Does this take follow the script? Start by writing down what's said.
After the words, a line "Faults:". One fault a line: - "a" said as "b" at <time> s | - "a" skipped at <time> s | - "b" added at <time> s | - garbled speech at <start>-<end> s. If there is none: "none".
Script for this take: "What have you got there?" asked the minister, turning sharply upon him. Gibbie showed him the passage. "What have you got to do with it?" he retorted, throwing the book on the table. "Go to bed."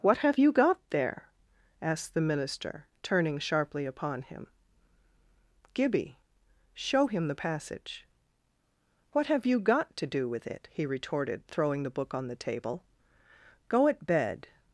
"What have you got there?" asked the minister, turning sharply upon him. Gibbie show him the passage. "What have you got to do with it?" he retorted, throwing the book on the table. "Go at bed."
Faults:
- "showed" said as "show" at 6.7 s
- "to" said as "at" at 13.9 s